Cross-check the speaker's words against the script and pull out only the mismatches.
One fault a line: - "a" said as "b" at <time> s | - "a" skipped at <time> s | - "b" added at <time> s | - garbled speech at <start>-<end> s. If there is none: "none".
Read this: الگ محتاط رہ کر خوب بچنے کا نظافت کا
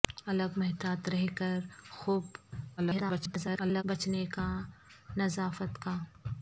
- garbled speech at 2.8-3.8 s